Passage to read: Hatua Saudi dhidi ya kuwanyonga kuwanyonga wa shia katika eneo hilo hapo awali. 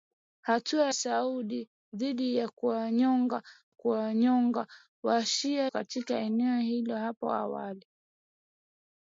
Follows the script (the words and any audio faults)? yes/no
yes